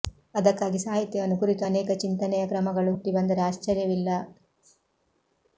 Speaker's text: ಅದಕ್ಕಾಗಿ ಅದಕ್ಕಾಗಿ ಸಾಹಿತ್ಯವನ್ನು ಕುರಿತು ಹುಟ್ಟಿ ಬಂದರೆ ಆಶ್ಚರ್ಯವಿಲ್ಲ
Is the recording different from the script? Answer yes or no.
yes